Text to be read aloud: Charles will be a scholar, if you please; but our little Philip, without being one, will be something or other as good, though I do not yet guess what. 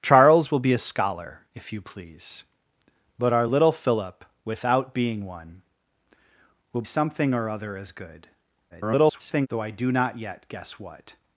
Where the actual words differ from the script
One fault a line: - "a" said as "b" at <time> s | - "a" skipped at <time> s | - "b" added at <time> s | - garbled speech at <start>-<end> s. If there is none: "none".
- "be" skipped at 6.8 s
- garbled speech at 8.7-9.5 s